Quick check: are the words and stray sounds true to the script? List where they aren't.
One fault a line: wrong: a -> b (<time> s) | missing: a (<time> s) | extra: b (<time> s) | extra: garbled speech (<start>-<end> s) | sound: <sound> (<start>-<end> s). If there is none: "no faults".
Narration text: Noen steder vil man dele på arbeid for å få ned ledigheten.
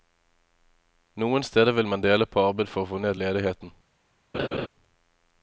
sound: laugh (4.3-4.7 s)